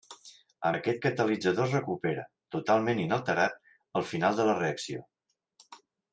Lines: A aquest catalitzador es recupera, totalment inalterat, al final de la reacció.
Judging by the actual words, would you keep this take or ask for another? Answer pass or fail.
pass